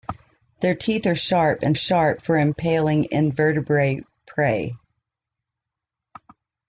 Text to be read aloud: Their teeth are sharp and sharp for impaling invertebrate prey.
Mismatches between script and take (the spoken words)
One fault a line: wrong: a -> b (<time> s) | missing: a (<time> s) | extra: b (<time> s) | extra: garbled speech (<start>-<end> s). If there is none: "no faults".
no faults